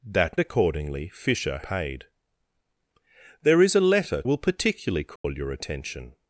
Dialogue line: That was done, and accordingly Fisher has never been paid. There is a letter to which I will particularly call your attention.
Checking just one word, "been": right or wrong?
wrong